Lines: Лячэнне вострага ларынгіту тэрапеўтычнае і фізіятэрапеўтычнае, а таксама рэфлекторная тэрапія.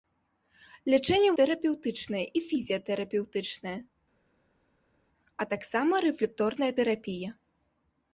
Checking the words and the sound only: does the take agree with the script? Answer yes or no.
no